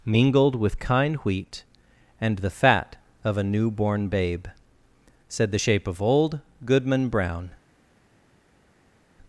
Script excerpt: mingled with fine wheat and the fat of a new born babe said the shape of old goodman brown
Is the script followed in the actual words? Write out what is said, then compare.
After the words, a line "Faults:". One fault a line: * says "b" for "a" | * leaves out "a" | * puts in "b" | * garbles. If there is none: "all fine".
mingled with kind wheat and the fat of a new born babe said the shape of old goodman brown
Faults:
* says "kind" for "fine"